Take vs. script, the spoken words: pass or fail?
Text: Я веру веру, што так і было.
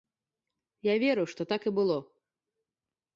fail